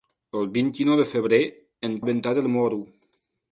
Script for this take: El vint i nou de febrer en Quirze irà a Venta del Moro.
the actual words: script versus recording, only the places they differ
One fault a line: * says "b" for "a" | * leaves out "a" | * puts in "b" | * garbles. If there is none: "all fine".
* leaves out "Quirze irà"